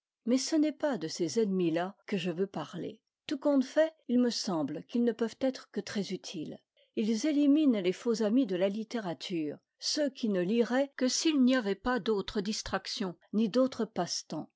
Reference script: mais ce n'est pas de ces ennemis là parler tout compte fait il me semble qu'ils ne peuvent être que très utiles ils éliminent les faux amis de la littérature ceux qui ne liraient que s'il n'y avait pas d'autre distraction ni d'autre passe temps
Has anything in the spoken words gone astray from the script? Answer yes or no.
yes